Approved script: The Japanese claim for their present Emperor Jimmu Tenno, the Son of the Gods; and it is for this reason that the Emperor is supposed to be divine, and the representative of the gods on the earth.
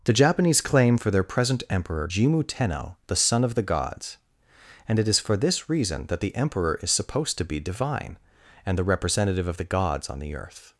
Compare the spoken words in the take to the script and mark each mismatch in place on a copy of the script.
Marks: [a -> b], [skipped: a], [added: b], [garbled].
The Japanese claim for their present Emperor Jimmu Tenno, the Son of the Gods; and it is for this reason that the Emperor is supposed to be divine, and the representative of the gods on the earth.